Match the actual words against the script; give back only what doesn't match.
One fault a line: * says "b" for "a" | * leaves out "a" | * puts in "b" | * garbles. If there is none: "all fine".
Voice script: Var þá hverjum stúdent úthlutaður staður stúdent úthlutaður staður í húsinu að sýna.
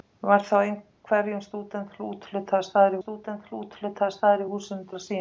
all fine